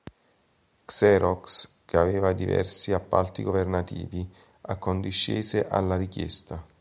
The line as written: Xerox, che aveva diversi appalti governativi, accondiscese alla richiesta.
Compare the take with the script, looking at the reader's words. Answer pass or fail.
pass